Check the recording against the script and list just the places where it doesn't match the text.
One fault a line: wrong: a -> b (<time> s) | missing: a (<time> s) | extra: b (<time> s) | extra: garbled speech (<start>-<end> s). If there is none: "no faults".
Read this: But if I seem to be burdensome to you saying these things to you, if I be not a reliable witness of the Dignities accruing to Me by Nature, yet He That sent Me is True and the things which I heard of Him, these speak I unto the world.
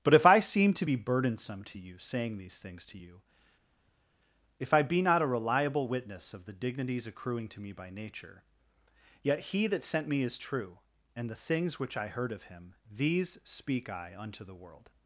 no faults